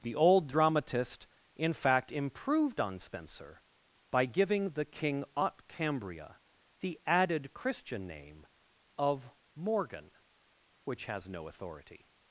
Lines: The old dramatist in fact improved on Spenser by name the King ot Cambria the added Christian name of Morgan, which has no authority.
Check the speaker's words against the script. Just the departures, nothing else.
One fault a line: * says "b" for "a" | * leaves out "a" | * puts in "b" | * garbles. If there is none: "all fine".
* says "giving" for "name"